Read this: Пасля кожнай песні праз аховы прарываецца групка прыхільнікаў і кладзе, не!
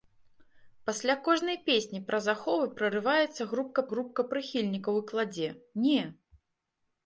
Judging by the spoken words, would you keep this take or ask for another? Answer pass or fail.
fail